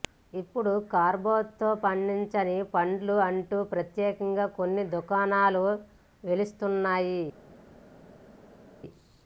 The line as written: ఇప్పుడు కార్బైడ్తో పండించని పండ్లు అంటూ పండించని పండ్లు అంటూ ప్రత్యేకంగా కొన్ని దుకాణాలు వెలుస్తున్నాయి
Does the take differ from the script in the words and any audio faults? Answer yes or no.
yes